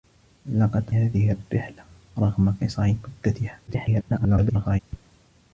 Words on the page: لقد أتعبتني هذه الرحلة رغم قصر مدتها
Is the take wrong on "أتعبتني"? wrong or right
wrong